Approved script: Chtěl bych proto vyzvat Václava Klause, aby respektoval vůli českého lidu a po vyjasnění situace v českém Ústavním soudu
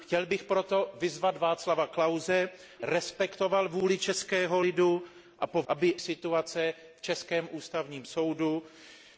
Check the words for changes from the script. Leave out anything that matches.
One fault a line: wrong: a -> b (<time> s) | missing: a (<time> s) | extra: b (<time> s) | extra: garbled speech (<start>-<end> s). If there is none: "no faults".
missing: aby (2.5 s)
wrong: vyjasnění -> aby (5.7 s)